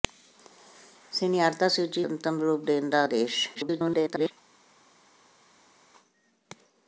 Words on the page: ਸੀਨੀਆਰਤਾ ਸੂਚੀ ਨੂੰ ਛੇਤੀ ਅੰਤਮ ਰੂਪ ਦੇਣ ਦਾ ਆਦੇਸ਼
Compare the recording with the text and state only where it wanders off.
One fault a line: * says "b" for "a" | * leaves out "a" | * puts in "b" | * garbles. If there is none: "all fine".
* leaves out "ਨੂੰ ਛੇਤੀ"
* garbles